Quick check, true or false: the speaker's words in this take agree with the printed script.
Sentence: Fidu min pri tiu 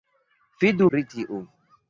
false